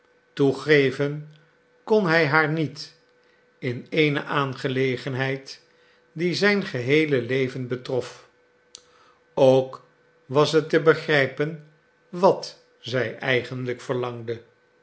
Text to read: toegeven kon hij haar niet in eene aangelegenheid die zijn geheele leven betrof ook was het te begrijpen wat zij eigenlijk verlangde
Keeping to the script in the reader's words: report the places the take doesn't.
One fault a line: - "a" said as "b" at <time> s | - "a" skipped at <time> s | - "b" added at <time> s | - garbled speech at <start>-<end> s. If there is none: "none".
none